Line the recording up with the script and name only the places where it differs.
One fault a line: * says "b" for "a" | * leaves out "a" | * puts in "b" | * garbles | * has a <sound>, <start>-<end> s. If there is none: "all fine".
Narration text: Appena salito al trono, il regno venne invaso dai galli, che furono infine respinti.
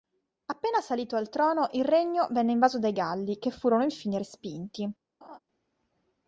* has a laugh, 5.2-5.4 s